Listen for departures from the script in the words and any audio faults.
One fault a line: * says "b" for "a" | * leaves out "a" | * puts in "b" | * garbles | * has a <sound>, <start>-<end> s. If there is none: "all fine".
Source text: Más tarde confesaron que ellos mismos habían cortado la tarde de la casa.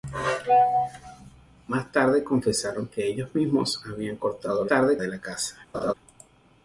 * has a laugh, 5.7-5.9 s